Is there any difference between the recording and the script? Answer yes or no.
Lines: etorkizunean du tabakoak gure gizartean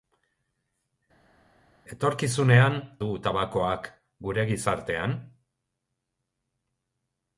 no